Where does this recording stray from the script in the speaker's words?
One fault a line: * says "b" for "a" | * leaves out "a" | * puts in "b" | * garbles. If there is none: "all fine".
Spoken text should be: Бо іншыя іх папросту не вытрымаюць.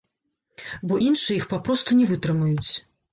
all fine